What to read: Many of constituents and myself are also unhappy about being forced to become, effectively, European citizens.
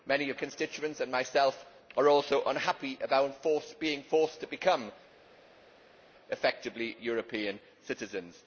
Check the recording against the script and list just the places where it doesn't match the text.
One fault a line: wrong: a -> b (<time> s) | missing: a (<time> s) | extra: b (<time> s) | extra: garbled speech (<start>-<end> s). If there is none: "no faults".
no faults